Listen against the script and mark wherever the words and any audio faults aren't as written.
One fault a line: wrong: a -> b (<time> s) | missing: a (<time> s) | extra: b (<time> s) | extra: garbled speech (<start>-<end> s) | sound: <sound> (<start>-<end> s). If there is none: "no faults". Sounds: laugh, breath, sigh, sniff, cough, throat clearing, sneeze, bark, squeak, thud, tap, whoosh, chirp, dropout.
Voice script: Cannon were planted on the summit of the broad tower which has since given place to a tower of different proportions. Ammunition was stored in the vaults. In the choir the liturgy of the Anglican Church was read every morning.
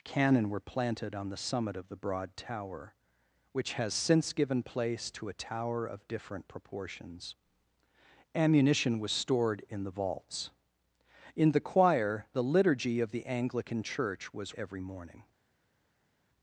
missing: read (14.6 s)